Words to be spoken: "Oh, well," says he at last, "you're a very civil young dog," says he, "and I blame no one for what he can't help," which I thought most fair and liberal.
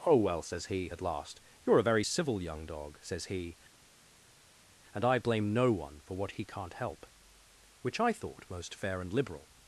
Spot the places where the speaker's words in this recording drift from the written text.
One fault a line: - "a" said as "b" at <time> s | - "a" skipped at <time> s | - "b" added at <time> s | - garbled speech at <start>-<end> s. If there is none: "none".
none